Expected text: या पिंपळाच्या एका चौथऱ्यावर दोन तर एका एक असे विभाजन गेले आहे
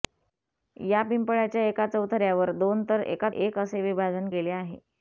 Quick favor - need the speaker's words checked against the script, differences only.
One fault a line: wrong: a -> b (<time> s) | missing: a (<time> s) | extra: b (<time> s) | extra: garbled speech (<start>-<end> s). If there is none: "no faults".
no faults